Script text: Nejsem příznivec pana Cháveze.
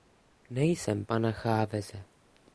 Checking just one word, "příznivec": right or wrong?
wrong